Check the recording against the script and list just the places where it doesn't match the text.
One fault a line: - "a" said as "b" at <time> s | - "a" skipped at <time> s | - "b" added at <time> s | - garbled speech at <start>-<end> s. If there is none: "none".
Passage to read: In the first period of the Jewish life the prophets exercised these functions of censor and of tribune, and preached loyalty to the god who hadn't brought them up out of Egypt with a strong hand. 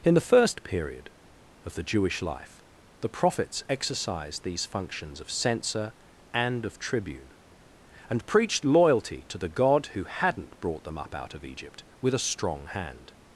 none